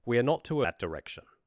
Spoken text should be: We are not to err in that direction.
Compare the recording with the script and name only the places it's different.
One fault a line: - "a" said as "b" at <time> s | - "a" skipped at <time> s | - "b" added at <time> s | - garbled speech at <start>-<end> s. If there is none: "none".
- "err in" skipped at 0.6 s